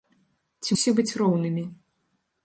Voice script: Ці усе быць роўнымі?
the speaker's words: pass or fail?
pass